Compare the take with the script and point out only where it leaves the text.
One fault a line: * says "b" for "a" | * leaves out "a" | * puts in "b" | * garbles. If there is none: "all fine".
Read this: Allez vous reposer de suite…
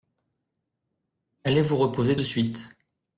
all fine